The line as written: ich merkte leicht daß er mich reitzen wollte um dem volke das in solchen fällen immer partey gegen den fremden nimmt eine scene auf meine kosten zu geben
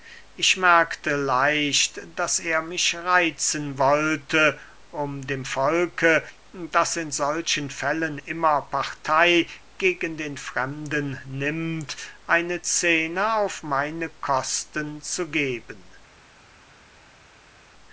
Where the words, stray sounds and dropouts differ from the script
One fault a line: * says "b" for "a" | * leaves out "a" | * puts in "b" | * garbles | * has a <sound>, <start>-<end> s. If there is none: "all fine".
all fine